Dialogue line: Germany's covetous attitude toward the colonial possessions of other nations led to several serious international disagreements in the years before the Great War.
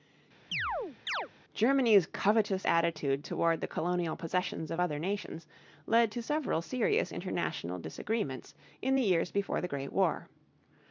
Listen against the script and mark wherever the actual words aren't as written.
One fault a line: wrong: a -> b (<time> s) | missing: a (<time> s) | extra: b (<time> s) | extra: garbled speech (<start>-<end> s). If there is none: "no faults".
no faults